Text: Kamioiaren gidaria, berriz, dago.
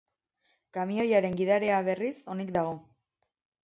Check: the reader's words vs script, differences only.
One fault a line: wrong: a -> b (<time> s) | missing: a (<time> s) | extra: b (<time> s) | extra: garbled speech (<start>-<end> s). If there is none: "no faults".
extra: onik (2.4 s)